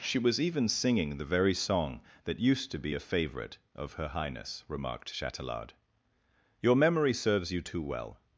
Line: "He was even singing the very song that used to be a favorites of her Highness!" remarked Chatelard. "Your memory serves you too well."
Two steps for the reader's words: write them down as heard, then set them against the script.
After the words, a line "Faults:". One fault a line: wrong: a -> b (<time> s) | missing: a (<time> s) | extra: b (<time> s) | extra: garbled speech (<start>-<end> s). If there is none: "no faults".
"She was even singing the very song that used to be a favorite of her Highness!" remarked Chatelard. "Your memory serves you too well."
Faults:
wrong: He -> She (0.0 s)
wrong: favorites -> favorite (3.0 s)